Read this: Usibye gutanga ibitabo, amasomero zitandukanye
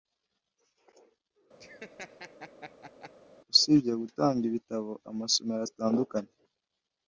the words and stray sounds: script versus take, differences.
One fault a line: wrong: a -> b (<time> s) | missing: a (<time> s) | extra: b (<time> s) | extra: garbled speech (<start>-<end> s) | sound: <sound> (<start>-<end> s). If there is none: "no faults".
sound: laugh (1.6-3.1 s)